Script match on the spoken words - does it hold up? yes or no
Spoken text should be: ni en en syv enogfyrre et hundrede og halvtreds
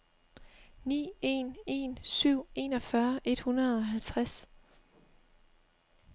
yes